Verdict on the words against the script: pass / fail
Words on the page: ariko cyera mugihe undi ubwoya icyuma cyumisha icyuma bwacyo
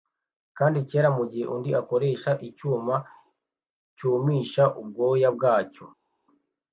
fail